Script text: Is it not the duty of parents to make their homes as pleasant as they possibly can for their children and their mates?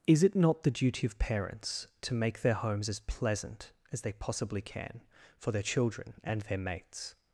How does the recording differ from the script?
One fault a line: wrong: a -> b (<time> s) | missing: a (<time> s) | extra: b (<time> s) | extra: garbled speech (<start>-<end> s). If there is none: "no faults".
no faults